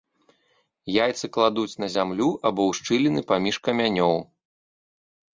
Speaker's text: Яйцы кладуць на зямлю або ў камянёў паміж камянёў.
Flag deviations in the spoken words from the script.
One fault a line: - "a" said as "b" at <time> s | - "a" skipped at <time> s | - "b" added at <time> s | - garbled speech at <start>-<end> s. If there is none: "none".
- "камянёў" said as "шчыліны" at 2.8 s